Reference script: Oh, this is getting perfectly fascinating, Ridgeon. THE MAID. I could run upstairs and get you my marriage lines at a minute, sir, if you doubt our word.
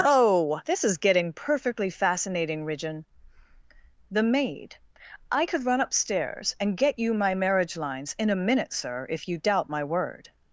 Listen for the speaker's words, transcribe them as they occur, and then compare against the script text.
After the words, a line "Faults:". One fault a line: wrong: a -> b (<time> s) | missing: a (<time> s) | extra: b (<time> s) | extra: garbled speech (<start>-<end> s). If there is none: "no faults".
Oh, this is getting perfectly fascinating, Ridgeon. THE MAID. I could run upstairs and get you my marriage lines in a minute, sir, if you doubt my word.
Faults:
wrong: at -> in (8.2 s)
wrong: our -> my (9.7 s)